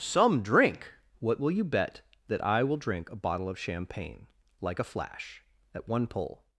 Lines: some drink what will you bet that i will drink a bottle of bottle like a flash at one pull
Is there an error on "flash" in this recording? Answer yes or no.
no